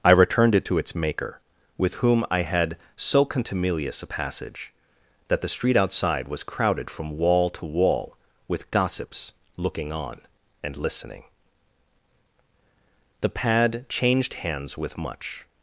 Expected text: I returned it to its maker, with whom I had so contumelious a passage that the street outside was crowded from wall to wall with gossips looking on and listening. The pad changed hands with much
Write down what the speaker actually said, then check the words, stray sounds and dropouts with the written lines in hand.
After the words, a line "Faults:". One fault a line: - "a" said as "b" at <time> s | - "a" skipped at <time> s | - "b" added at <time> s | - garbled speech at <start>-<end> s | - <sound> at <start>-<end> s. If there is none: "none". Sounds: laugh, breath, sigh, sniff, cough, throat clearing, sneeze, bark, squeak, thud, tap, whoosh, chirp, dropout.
I returned it to its maker, with whom I had so contumelious a passage that the street outside was crowded from wall to wall with gossips looking on and listening. The pad changed hands with much
Faults:
none